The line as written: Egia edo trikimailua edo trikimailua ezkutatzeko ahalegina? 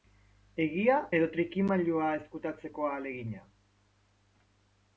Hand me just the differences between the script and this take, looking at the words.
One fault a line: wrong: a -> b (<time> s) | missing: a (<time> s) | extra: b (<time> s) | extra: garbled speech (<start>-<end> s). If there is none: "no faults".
missing: edo trikimailua (2.1 s)